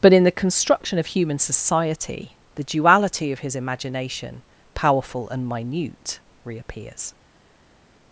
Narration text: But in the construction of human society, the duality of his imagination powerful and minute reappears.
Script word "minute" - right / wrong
right